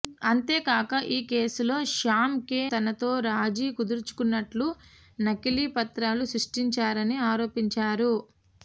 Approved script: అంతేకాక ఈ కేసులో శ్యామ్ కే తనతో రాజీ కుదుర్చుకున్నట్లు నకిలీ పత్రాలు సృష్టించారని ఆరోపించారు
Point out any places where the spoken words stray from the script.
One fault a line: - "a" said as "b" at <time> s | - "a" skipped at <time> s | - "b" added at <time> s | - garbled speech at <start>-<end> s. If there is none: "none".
none